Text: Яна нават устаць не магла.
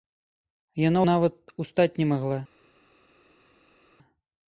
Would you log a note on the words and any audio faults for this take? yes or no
no